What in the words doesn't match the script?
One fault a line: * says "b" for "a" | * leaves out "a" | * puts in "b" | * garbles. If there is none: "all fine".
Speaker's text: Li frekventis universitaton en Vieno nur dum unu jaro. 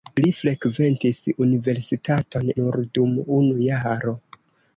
* leaves out "en Vieno"